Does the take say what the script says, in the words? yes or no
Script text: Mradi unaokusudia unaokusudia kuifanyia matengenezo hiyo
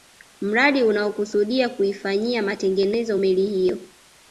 no